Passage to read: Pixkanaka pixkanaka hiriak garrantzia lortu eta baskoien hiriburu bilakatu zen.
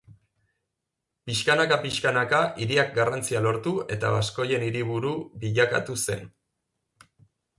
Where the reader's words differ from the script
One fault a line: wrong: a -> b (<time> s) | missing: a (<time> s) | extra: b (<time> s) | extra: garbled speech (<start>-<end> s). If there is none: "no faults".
no faults